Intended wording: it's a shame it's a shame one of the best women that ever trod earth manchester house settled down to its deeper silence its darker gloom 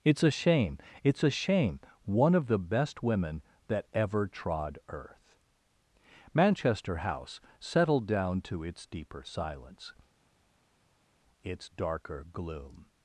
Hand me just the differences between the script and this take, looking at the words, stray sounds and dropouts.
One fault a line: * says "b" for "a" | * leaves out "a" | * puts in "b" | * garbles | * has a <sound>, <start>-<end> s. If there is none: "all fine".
all fine